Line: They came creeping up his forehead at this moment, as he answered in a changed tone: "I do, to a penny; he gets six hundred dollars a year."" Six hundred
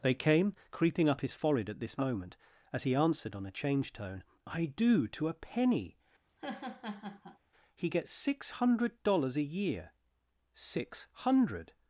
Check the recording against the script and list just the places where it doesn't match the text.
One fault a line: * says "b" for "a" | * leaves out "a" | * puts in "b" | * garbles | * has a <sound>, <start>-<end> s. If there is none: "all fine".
* says "on" for "in"
* has a laugh, 6.3-7.4 s